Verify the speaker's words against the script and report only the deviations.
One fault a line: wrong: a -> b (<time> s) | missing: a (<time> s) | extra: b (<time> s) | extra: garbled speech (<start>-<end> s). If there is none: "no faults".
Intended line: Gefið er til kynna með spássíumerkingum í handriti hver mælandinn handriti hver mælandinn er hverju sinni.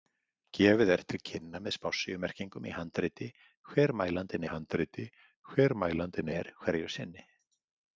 no faults